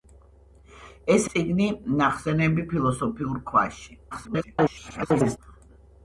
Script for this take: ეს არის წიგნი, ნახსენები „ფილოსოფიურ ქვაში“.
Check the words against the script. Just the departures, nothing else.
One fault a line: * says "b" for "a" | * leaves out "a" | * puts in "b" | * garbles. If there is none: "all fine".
* leaves out "არის"
* garbles